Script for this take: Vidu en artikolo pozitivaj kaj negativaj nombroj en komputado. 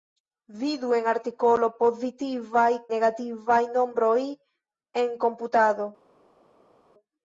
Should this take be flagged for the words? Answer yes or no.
yes